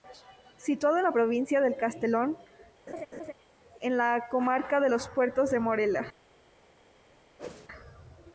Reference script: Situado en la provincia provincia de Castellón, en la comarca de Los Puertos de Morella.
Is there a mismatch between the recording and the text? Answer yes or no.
yes